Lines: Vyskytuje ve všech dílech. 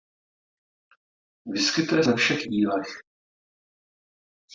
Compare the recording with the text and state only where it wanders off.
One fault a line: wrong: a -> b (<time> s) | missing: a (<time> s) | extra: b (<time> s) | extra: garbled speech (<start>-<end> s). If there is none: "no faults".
no faults